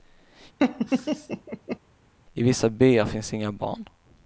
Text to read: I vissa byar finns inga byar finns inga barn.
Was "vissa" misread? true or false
false